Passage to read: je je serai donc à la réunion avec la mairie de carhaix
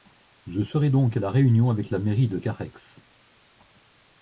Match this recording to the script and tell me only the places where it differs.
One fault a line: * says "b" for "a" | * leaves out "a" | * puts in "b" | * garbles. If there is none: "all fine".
* leaves out "je"